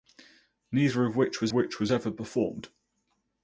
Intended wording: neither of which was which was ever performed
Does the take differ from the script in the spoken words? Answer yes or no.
no